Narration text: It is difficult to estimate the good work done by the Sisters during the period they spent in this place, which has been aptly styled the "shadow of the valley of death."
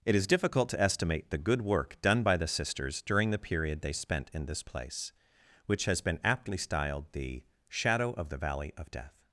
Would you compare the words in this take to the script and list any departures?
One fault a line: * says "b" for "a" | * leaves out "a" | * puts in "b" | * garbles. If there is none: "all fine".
all fine